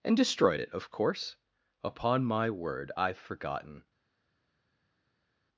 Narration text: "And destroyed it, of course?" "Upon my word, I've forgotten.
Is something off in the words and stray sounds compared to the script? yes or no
no